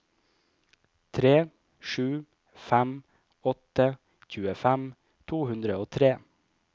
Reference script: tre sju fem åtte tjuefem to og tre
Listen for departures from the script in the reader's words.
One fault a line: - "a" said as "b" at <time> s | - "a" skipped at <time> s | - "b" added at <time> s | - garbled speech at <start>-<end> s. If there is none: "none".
- "hundre" added at 5.5 s